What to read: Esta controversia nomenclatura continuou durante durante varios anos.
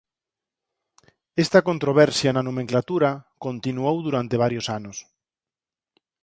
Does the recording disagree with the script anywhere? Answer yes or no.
yes